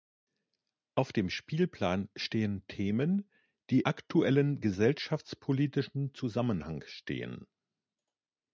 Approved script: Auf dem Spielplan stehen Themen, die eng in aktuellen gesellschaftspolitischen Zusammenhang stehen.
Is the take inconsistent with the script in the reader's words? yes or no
yes